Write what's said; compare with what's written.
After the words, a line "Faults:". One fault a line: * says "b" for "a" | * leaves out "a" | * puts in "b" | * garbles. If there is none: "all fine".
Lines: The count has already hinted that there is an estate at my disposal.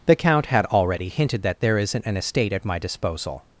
The count had already hinted that there isn't an estate at my disposal.
Faults:
* says "had" for "has"
* says "isn't" for "is"